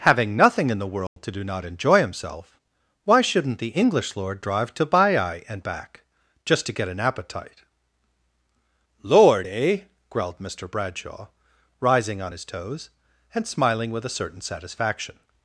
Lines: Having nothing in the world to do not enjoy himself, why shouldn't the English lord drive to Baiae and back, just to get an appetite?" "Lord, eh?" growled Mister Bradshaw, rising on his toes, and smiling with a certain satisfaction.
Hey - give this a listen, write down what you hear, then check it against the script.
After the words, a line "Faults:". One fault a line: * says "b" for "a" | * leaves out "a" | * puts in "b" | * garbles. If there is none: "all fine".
Having nothing in the world to do not enjoy himself, why shouldn't the English lord drive to Baiae and back, just to get an appetite?" "Lord, eh?" growled Mister Bradshaw, rising on his toes, and smiling with a certain satisfaction.
Faults:
all fine